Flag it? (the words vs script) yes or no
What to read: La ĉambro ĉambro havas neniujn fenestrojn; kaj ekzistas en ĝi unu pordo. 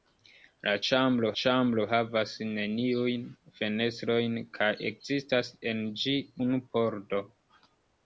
no